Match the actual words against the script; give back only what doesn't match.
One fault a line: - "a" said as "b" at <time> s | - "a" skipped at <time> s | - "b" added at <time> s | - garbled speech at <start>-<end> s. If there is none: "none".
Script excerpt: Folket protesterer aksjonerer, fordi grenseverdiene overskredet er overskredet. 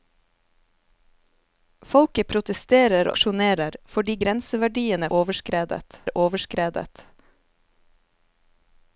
none